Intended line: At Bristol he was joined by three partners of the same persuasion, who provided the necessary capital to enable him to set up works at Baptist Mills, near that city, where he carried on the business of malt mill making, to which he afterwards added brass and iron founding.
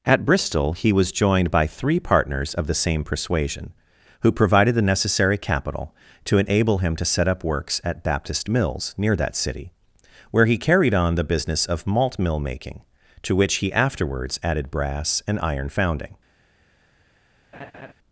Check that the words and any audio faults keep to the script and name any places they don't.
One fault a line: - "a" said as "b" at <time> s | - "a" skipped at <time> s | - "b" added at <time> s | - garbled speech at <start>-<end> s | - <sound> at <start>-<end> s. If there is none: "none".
- laugh at 17.5-17.9 s